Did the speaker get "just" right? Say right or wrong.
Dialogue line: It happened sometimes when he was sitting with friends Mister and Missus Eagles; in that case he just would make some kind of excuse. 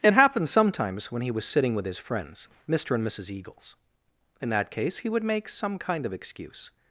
wrong